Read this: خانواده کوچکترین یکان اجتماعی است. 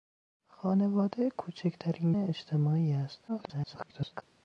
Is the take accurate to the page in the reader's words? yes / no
no